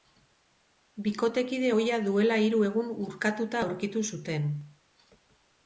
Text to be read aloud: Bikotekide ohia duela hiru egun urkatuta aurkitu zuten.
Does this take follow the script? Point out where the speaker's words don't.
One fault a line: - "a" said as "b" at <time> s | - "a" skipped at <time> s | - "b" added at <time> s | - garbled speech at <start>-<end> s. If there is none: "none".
none